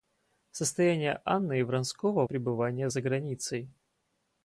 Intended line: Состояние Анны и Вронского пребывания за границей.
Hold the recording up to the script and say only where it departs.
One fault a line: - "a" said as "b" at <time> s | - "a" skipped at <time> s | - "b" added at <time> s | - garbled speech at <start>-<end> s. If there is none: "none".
none